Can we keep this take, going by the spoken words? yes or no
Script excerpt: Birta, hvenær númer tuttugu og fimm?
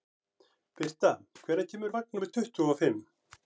no